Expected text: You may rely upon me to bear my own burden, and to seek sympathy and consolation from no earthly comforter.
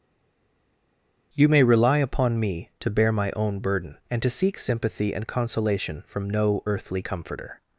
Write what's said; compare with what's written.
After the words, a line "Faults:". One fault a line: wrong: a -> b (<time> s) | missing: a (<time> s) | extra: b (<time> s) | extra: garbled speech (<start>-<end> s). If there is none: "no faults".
You may rely upon me to bear my own burden, and to seek sympathy and consolation from no earthly comforter.
Faults:
no faults